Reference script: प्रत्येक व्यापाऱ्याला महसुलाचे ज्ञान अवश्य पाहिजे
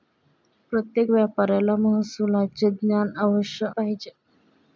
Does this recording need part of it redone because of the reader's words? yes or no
no